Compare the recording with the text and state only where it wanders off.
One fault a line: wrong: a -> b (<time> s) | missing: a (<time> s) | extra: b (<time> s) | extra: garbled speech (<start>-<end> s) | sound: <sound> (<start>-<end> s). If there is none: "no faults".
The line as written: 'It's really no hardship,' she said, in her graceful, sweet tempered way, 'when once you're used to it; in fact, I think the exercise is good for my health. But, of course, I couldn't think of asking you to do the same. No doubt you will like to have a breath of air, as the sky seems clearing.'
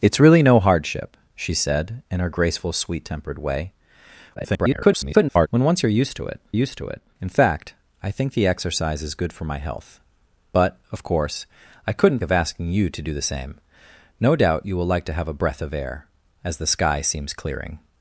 extra: garbled speech (4.3-5.5 s)
extra: used to it (6.5 s)
missing: think (12.2 s)